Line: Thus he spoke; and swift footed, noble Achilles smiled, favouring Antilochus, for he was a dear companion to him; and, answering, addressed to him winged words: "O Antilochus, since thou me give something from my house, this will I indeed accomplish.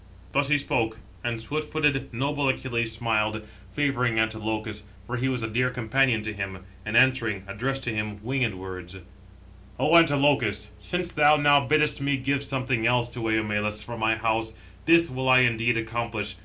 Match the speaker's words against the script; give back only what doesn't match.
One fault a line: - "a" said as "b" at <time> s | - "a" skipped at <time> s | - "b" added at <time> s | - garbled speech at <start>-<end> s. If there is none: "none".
- "now biddest" added at 11.4 s
- "else to Eumelus" added at 12.9 s